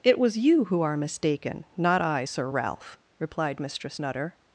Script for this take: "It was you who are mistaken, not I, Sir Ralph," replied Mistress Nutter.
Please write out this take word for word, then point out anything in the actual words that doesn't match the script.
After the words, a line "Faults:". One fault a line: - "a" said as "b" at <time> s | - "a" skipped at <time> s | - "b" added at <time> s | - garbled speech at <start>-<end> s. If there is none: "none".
"It was you who are mistaken, not I, Sir Ralph," replied Mistress Nutter.
Faults:
none